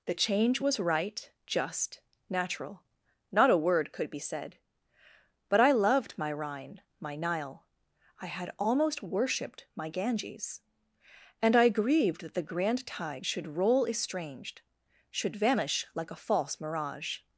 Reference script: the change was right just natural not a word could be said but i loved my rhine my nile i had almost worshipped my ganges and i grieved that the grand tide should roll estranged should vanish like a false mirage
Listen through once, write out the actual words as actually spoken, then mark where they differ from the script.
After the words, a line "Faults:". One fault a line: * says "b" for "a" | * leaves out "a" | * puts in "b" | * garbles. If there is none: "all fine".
the change was right just natural not a word could be said but i loved my rhine my nile i had almost worshipped my ganges and i grieved that the grand tide should roll estranged should vanish like a false mirage
Faults:
all fine